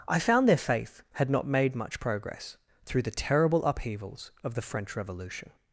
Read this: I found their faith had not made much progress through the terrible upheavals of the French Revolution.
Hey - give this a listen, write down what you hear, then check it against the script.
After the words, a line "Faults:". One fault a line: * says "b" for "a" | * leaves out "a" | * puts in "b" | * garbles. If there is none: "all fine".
I found their faith had not made much progress through the terrible upheavals of the French Revolution.
Faults:
all fine